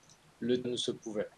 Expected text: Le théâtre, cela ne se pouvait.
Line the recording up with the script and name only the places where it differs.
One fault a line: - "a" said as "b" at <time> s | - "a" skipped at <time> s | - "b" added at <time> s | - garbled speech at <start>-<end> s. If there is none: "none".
- "théâtre cela" skipped at 0.6 s